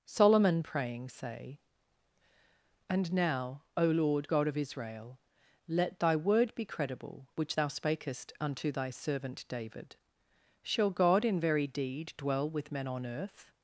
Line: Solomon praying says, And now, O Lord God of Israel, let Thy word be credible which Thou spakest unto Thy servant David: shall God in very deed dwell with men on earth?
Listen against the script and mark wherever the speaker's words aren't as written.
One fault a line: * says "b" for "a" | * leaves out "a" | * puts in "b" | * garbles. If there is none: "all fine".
* says "say" for "says"